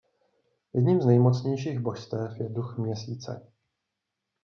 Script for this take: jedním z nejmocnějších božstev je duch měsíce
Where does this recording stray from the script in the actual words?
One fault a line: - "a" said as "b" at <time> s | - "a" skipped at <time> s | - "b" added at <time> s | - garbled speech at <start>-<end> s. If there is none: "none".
none